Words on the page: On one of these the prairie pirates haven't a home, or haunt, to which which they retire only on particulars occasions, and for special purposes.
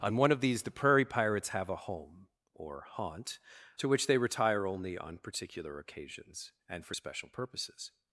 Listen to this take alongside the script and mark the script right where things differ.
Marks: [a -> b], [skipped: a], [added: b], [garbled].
On one of these the prairie pirates [haven't -> have] a home, or haunt, to which [skipped: which] they retire only on [particulars -> particular] occasions, and for special purposes.